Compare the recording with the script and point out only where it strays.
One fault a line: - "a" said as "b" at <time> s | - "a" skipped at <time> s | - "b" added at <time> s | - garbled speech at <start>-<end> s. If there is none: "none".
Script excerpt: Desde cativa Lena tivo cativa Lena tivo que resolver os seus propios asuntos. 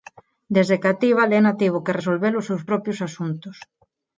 - "cativa Lena tivo" skipped at 1.8 s